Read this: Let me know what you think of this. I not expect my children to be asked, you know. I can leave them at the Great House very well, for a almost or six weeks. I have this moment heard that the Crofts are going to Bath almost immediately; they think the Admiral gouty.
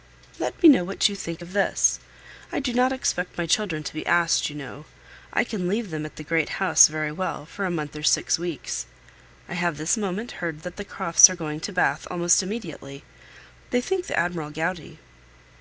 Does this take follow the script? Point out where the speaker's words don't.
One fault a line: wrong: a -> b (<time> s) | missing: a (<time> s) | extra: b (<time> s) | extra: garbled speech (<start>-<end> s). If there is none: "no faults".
extra: do (2.6 s)
wrong: almost -> month (7.7 s)